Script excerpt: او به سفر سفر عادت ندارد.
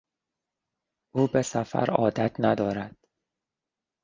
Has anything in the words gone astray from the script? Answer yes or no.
yes